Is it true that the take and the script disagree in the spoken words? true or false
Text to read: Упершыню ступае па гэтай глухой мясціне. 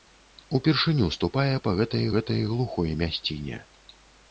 true